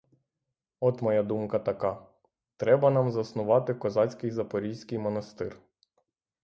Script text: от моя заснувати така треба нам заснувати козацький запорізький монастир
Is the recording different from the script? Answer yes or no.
yes